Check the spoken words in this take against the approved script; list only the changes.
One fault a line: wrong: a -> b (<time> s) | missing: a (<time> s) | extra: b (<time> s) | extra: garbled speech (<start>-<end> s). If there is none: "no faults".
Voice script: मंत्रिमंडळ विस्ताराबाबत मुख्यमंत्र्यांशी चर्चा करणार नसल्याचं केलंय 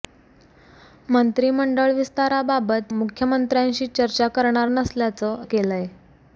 no faults